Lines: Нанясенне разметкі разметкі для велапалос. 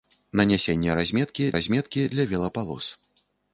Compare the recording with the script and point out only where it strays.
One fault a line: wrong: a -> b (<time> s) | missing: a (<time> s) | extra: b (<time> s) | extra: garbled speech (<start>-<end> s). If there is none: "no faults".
no faults